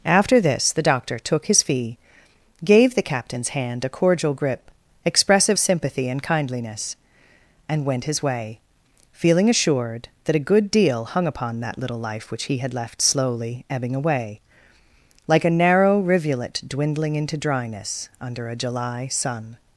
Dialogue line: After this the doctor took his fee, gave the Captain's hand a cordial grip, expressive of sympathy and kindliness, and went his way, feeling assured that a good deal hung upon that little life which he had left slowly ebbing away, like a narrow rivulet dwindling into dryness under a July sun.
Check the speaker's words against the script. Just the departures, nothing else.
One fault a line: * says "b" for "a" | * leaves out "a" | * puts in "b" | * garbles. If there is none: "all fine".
* leaves out "of"